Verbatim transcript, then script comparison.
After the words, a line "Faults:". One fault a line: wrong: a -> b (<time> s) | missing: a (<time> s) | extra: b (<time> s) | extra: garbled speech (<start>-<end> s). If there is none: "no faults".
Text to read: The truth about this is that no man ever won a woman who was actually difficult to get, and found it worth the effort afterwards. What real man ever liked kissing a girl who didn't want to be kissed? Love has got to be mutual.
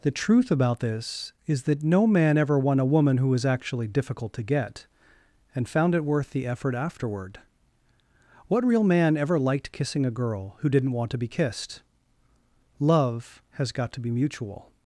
The truth about this is that no man ever won a woman who was actually difficult to get, and found it worth the effort afterward. What real man ever liked kissing a girl who didn't want to be kissed? Love has got to be mutual.
Faults:
wrong: afterwards -> afterward (6.7 s)